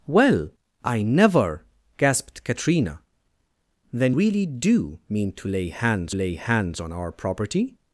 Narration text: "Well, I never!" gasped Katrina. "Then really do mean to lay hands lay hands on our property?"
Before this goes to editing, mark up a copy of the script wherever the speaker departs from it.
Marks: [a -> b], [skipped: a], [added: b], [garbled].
"Well, I never!" gasped Katrina. "Then really do mean to lay hands lay hands on our property?"